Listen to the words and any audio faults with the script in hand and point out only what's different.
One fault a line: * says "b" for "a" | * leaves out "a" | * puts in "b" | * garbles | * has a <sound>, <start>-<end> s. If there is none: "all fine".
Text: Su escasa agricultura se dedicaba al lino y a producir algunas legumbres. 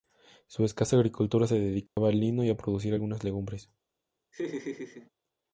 * has a dropout, 1.9-2.0 s
* has a laugh, 4.3-5.1 s